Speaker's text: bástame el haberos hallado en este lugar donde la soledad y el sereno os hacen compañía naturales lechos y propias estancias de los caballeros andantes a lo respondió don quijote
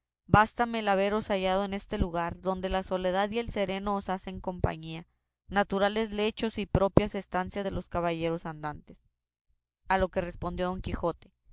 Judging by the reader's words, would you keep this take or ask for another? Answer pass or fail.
fail